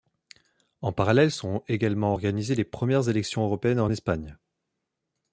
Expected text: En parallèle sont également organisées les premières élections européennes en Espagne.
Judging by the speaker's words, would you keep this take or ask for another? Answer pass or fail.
pass